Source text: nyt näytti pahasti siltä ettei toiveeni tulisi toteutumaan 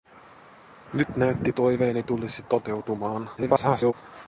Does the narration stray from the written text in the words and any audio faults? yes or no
yes